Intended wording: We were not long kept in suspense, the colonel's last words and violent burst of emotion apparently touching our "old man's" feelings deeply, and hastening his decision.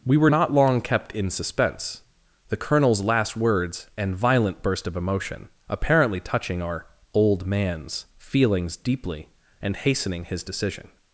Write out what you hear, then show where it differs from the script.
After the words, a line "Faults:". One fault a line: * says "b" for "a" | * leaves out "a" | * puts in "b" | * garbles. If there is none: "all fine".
We were not long kept in suspense, the colonel's last words and violent burst of emotion apparently touching our "old man's" feelings deeply, and hastening his decision.
Faults:
all fine